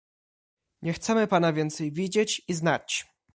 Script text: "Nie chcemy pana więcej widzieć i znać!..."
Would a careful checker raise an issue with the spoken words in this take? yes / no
no